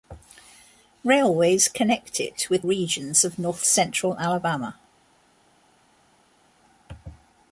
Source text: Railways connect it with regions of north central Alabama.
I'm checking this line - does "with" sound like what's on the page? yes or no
yes